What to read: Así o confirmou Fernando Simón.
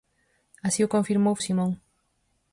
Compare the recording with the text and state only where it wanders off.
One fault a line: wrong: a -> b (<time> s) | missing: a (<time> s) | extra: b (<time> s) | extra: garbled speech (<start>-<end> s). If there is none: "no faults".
missing: Fernando (1.3 s)